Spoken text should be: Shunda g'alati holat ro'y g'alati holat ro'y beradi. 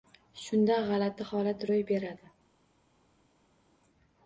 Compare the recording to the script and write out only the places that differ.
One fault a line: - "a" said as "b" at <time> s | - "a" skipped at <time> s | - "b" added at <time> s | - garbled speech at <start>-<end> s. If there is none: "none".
- "g'alati holat ro'y" skipped at 1.9 s